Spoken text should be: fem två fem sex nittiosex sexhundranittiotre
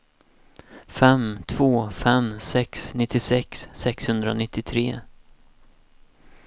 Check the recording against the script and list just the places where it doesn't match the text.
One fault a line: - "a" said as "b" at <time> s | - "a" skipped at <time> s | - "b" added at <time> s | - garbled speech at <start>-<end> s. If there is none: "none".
none